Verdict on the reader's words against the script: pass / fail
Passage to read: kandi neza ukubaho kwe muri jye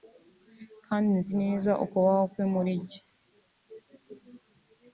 fail